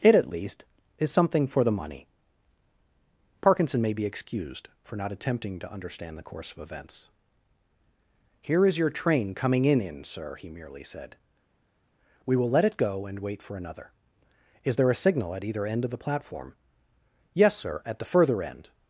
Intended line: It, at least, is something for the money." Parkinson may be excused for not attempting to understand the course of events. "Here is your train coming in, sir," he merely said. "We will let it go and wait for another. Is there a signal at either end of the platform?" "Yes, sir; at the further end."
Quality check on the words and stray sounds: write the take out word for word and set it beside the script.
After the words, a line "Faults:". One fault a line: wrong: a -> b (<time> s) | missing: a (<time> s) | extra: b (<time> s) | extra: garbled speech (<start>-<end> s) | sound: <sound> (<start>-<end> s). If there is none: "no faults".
It, at least, is something for the money." Parkinson may be excused for not attempting to understand the course of events. "Here is your train coming in in, sir," he merely said. "We will let it go and wait for another. Is there a signal at either end of the platform?" "Yes, sir; at the further end."
Faults:
extra: in (9.8 s)